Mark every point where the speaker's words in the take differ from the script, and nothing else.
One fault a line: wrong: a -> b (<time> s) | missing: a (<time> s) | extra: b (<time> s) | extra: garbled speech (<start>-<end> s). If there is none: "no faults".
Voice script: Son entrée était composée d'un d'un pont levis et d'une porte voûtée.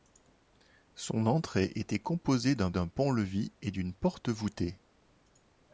no faults